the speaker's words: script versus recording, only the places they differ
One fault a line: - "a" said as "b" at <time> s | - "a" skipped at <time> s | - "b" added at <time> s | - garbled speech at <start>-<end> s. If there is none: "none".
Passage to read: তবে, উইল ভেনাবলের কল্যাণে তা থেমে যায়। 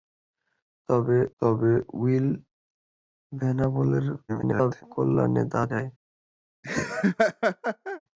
- "তবে" added at 1.4 s
- garbled speech at 4.3-4.8 s
- "থেমে" skipped at 5.6 s